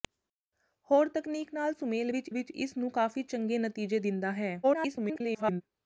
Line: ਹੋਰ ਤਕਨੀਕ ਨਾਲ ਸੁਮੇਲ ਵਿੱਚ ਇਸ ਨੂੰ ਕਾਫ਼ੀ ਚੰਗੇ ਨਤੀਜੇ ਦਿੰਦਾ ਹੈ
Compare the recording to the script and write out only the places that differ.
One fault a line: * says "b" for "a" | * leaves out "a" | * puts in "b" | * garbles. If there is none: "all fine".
* puts in "ਵਿੱਚ"
* garbles